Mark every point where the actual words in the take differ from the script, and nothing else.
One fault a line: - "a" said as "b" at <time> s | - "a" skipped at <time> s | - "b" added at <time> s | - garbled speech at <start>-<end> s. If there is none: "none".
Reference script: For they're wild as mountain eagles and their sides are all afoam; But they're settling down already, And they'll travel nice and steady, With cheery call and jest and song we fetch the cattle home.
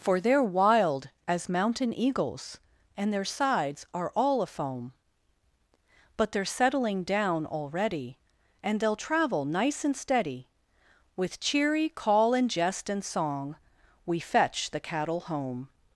none